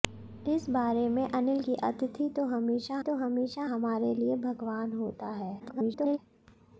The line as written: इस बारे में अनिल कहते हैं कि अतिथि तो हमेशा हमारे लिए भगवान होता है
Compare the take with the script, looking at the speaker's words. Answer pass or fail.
fail